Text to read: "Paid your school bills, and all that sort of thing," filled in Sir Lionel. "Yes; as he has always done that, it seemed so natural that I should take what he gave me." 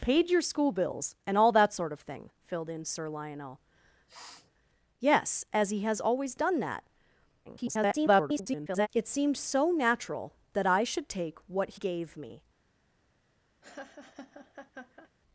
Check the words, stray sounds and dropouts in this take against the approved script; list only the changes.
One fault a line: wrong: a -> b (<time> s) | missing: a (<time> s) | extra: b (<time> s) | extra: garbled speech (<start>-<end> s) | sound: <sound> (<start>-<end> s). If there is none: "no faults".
sound: sniff (4.1-4.5 s)
extra: garbled speech (7.4-8.9 s)
missing: he (11.7 s)
sound: laugh (13.6-15.1 s)